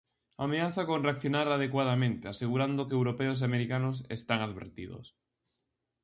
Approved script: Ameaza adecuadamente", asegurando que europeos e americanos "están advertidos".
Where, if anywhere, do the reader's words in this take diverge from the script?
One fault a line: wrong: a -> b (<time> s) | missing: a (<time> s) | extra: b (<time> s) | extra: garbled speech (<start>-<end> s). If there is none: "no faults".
extra: con reaccionar (0.9 s)